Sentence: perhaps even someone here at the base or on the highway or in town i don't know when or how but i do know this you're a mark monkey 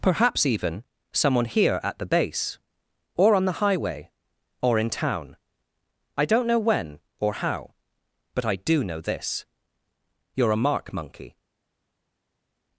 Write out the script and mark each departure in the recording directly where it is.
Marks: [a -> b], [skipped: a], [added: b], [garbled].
perhaps even someone here at the base or on the highway or in town i don't know when or how but i do know this you're a mark monkey